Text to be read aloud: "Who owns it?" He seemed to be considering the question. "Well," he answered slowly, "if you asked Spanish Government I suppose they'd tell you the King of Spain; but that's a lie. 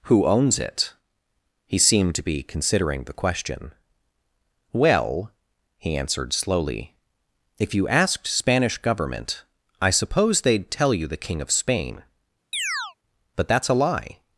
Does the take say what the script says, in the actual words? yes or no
yes